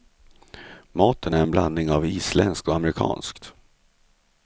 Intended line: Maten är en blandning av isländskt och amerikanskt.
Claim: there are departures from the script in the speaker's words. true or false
false